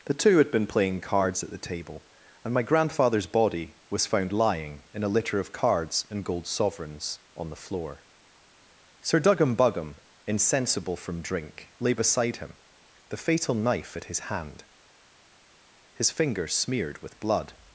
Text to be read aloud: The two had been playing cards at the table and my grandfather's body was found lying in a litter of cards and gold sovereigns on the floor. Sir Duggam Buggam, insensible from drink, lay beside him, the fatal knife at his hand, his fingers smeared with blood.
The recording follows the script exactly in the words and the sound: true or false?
true